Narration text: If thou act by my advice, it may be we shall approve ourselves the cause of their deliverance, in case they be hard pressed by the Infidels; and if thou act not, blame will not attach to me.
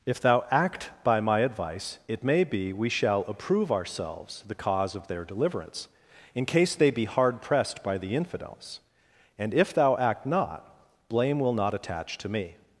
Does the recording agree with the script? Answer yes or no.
yes